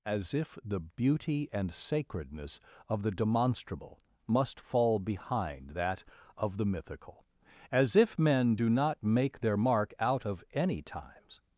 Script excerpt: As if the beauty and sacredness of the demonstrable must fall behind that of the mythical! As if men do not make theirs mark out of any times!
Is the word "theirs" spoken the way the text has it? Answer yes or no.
no